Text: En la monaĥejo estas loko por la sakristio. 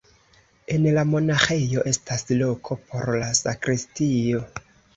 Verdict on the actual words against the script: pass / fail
pass